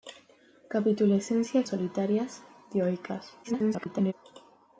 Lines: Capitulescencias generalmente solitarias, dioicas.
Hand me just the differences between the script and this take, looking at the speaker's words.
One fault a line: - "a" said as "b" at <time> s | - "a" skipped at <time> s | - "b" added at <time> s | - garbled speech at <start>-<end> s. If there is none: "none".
- "generalmente" skipped at 1.7 s
- garbled speech at 3.4-4.1 s